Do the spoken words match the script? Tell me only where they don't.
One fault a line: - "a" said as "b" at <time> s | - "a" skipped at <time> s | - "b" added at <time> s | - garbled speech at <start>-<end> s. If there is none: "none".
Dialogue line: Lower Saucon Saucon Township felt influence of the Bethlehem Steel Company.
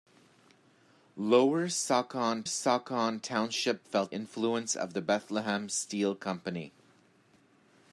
none